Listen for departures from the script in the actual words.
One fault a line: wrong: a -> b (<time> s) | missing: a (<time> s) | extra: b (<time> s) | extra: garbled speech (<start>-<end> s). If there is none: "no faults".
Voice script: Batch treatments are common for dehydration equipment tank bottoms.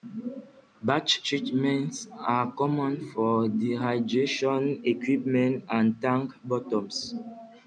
extra: and (5.7 s)